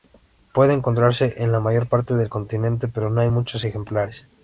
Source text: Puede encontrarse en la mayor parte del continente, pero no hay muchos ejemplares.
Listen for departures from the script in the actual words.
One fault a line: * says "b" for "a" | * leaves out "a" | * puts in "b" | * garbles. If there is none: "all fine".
all fine